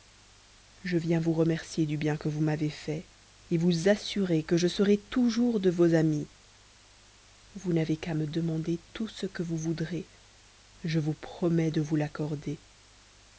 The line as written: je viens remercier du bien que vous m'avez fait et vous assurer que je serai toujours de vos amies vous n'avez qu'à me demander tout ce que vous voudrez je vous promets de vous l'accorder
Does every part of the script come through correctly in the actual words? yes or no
no